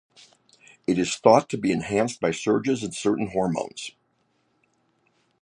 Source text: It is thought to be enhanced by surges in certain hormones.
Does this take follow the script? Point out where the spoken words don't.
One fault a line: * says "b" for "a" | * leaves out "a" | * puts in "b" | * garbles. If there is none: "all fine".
all fine